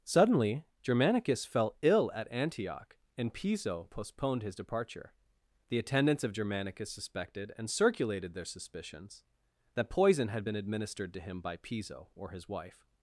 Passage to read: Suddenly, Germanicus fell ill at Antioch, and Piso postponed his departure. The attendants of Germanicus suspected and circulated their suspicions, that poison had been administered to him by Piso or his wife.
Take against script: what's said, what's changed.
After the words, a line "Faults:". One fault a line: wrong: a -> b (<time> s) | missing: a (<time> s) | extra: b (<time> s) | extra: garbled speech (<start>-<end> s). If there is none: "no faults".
Suddenly, Germanicus fell ill at Antioch, and Piso postponed his departure. The attendants of Germanicus suspected and circulated their suspicions, that poison had been administered to him by Piso or his wife.
Faults:
no faults